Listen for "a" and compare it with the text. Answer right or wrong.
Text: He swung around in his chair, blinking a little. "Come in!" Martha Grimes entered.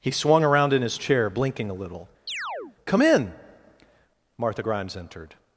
right